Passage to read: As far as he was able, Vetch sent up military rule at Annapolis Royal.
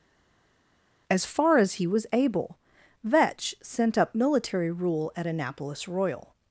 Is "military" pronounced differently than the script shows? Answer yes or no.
no